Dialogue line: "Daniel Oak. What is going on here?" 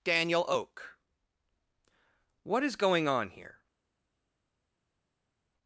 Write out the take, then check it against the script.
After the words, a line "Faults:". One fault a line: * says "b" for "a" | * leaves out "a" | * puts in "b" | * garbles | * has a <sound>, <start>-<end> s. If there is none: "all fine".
"Daniel Oak. What is going on here?"
Faults:
all fine